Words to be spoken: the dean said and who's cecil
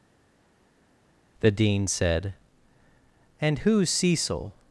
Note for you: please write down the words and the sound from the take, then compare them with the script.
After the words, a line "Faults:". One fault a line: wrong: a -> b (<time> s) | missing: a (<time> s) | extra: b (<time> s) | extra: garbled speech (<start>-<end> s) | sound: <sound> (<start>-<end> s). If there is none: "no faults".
the dean said and who's cecil
Faults:
no faults